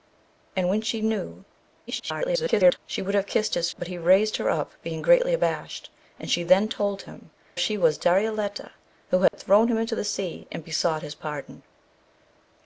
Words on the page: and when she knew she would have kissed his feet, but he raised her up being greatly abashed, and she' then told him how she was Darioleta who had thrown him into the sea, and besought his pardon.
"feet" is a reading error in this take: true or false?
true